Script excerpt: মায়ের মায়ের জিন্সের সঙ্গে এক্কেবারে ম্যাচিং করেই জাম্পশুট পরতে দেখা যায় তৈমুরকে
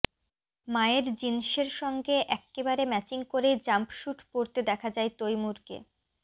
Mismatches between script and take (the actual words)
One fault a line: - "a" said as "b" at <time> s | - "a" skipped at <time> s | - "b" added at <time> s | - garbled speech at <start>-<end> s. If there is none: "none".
- "মায়ের" skipped at 1.1 s